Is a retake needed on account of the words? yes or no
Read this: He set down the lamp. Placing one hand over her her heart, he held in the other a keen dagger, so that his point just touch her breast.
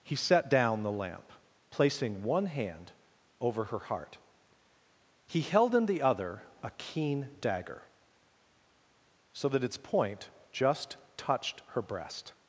yes